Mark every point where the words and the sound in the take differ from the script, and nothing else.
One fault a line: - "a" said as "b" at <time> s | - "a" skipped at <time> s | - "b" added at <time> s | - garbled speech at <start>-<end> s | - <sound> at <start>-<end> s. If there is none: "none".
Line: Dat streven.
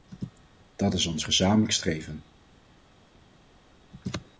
- "is ons gezamenlijk" added at 0.9 s